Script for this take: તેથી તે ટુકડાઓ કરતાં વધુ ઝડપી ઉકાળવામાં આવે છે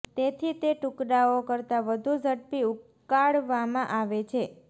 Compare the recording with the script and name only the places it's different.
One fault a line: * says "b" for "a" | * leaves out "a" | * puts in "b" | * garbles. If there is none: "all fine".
all fine